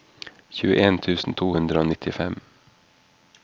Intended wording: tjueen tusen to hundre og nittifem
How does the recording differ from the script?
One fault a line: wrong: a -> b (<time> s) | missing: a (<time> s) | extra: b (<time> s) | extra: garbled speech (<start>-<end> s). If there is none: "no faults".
no faults